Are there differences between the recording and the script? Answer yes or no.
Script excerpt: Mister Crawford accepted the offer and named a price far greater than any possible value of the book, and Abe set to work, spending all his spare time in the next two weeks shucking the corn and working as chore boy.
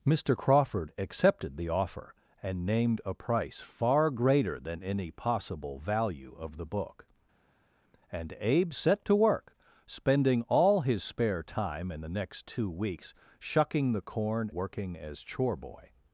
yes